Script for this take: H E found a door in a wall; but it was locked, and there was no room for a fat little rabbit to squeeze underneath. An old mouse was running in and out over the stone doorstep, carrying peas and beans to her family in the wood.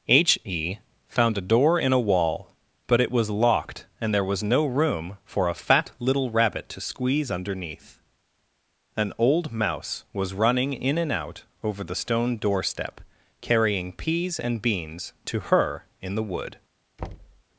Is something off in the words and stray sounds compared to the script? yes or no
yes